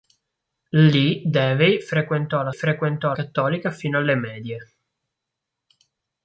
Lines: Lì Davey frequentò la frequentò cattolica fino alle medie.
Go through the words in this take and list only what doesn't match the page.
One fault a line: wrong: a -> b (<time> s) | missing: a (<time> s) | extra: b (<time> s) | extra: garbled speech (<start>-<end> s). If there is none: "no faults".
no faults